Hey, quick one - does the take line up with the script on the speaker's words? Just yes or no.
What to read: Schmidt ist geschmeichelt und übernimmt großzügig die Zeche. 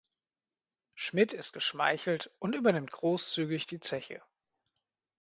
yes